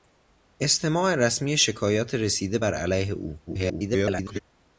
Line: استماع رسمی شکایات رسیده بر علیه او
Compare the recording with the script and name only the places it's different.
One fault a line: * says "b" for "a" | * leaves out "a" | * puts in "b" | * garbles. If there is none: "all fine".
* garbles